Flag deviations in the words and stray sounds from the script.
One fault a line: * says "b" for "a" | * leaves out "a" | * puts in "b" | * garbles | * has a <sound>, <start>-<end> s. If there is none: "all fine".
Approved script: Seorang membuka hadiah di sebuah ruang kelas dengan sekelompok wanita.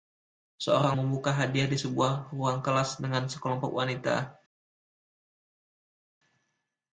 all fine